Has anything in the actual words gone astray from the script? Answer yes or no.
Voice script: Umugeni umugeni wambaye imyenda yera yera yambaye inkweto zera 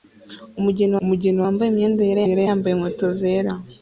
no